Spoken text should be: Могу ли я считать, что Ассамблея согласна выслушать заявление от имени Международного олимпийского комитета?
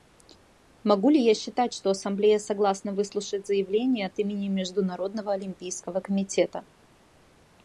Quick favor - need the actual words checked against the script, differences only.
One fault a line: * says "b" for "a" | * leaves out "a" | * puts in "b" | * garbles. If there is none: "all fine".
all fine